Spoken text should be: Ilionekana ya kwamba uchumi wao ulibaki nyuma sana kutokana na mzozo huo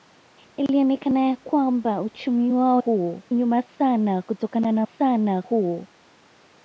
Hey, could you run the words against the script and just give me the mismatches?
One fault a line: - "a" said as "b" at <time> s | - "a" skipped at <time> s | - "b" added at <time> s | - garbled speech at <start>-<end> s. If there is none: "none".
- "ulibaki" said as "huo" at 2.8 s
- "mzozo" said as "sana" at 4.8 s